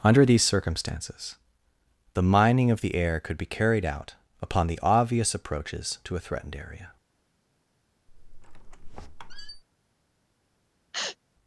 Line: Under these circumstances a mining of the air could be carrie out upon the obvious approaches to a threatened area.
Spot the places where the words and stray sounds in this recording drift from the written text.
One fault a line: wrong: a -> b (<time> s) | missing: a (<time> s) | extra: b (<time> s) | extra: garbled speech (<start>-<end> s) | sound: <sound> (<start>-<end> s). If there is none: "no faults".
wrong: a -> the (2.1 s)
wrong: carrie -> carried (3.5 s)
sound: squeak (8.1-9.6 s)
sound: sneeze (10.9-11.2 s)